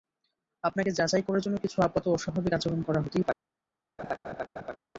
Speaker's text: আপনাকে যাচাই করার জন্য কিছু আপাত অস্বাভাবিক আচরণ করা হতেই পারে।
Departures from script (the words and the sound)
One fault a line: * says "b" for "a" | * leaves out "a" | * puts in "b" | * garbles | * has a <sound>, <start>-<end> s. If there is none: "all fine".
* has a laugh, 4.0-4.8 s